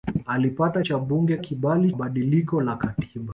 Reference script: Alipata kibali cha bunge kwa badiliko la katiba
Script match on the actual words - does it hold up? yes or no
no